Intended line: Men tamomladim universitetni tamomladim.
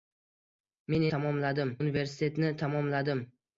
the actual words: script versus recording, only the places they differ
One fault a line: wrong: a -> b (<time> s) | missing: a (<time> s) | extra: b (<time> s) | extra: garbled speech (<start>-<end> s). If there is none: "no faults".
no faults